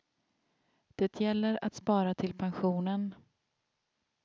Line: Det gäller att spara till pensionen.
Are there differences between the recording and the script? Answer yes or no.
no